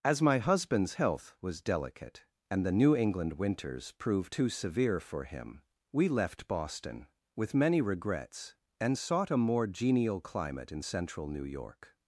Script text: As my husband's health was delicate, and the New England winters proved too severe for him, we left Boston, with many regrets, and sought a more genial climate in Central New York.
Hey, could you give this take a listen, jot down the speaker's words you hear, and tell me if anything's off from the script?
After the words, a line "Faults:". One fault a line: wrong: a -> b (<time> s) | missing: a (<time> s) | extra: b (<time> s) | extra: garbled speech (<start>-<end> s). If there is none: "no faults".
As my husband's health was delicate, and the New England winters proved too severe for him, we left Boston, with many regrets, and sought a more genial climate in Central New York.
Faults:
no faults